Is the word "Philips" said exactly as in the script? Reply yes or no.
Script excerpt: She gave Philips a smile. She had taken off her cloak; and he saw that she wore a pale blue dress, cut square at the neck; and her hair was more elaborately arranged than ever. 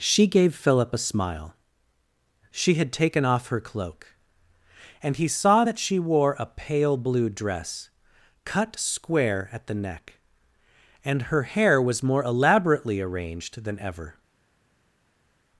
no